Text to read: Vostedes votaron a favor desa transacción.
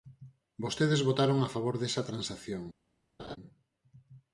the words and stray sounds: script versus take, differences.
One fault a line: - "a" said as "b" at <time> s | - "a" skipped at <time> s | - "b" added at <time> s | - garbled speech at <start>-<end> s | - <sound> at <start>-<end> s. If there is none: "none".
- laugh at 3.2-3.4 s